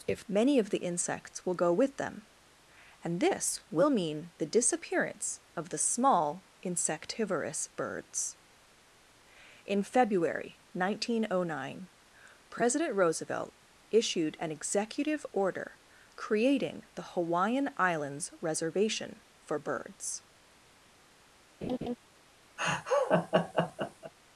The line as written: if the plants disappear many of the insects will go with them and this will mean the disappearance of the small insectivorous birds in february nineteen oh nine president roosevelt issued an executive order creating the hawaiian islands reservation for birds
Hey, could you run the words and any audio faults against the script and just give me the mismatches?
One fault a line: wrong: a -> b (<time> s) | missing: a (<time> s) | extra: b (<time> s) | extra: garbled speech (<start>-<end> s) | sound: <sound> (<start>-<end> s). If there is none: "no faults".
missing: the plants disappear (0.2 s)
sound: laugh (21.6-22.0 s)
sound: laugh (22.6-24.1 s)